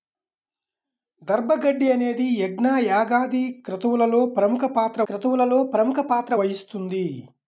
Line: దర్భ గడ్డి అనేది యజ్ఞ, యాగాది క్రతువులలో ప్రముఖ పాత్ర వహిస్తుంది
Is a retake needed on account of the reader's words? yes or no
yes